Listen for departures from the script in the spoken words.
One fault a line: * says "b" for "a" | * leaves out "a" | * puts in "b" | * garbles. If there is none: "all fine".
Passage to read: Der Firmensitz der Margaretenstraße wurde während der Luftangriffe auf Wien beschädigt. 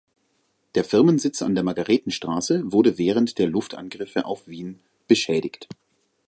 * puts in "an"